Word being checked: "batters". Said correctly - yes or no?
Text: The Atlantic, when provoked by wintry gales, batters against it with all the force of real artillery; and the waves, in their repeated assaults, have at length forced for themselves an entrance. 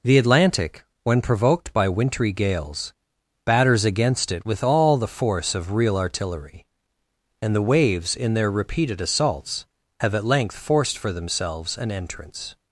yes